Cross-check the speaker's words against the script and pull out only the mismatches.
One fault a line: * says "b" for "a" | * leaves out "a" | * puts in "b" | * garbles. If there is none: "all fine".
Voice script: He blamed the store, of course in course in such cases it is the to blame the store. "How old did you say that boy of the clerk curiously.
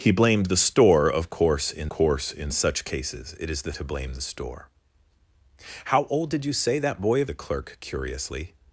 all fine